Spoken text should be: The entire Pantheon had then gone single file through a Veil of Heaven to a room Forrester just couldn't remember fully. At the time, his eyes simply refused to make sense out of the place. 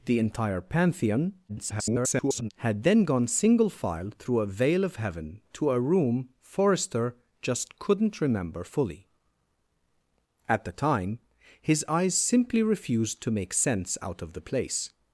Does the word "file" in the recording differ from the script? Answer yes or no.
no